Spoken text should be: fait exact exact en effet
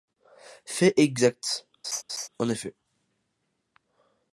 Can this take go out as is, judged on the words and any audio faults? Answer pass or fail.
fail